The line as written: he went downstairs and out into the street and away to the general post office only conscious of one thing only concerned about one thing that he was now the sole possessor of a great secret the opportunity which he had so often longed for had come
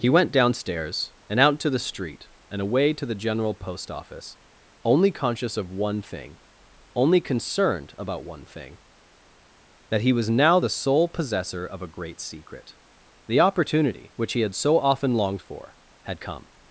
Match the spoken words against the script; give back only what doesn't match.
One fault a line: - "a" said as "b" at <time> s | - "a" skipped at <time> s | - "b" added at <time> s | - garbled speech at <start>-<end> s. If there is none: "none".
- "into" said as "to" at 1.6 s